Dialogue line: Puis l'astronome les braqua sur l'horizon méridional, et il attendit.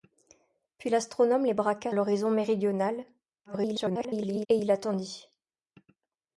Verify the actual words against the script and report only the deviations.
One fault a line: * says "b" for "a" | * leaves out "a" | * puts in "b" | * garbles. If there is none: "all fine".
* leaves out "sur"
* garbles